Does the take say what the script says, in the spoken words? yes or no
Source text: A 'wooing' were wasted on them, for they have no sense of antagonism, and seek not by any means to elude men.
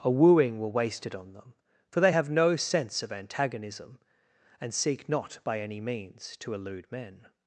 yes